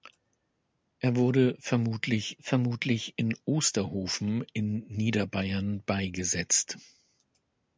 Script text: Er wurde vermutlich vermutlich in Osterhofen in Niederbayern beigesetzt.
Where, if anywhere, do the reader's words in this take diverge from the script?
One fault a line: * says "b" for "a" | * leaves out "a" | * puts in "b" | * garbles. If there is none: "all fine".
all fine